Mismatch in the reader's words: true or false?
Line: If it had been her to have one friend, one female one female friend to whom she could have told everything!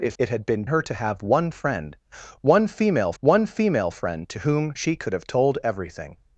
false